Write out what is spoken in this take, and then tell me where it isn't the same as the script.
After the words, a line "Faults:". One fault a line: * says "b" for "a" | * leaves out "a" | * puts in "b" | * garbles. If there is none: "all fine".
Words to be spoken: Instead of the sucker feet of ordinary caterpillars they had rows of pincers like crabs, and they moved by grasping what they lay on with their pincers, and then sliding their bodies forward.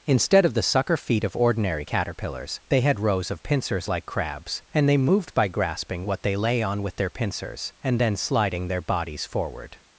Instead of the sucker feet of ordinary caterpillars they had rows of pincers like crabs, and they moved by grasping what they lay on with their pincers, and then sliding their bodies forward.
Faults:
all fine